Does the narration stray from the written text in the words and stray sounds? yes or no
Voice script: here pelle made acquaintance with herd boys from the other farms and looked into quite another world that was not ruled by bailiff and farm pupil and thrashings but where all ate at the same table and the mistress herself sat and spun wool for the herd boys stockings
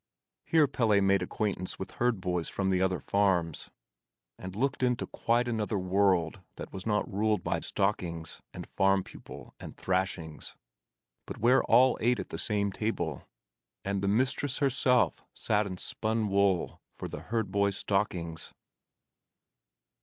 yes